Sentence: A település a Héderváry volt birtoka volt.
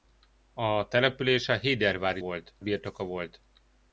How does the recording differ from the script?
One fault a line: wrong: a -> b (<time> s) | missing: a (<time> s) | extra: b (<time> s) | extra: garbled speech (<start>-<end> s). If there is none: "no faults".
no faults